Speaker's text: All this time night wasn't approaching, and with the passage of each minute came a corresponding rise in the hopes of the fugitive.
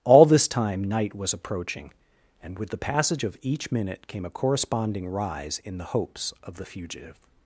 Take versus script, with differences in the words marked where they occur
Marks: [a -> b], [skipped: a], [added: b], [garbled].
All this time night [wasn't -> was] approaching, and with the passage of each minute came a corresponding rise in the hopes of the fugitive.